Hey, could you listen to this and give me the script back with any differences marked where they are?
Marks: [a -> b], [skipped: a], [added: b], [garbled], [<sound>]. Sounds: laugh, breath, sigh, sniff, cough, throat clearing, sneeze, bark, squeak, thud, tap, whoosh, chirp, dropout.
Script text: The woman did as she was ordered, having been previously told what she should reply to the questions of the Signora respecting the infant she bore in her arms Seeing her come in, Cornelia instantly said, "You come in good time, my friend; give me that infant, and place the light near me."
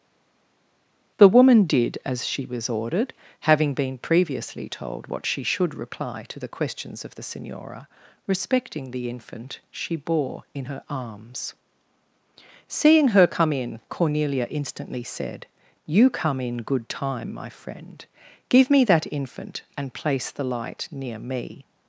The woman did as she was ordered, having been previously told what she should reply to the questions of the Signora respecting the infant she bore in her arms Seeing her come in, Cornelia instantly said, "You come in good time, my friend; give me that infant, and place the light near me."